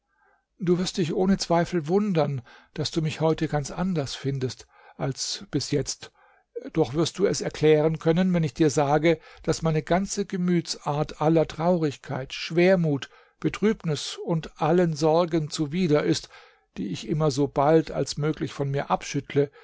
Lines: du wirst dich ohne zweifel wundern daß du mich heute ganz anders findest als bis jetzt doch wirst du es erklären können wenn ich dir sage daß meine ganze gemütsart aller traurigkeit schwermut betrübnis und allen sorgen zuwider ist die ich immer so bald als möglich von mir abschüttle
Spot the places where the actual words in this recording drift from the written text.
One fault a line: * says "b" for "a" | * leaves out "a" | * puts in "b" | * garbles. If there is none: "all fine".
all fine